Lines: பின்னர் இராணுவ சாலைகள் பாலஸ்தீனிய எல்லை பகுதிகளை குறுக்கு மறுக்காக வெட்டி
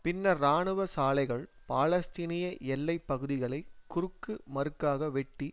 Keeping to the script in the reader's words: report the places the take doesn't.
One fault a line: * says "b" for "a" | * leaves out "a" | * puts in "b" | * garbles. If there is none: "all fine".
all fine